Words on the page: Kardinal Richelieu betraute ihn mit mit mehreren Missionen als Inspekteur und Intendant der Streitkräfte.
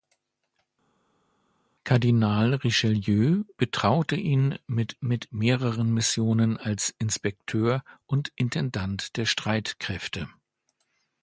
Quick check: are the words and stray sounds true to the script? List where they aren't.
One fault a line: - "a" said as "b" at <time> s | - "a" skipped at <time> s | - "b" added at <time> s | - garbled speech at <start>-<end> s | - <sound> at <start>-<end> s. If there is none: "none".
none